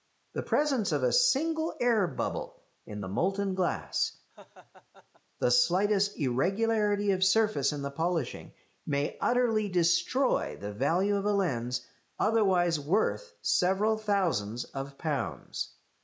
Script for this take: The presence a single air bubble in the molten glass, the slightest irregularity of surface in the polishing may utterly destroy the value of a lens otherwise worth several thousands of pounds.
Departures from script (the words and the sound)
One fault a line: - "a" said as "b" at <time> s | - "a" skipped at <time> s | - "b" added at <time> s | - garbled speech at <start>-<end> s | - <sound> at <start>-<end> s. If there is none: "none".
- "of" added at 0.9 s
- laugh at 4.3-5.2 s